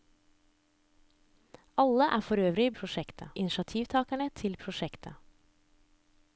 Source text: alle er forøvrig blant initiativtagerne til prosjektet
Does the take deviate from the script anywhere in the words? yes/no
yes